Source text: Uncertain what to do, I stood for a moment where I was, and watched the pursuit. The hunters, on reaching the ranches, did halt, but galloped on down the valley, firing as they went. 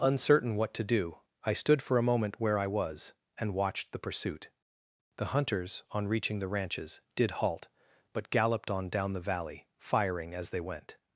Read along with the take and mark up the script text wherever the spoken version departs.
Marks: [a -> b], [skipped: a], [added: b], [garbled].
Uncertain what to do, I stood for a moment where I was, and watched the pursuit. The hunters, on reaching the ranches, did halt, but galloped on down the valley, firing as they went.